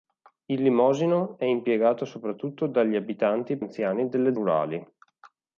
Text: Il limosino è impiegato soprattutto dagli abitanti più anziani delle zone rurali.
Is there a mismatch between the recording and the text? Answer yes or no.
yes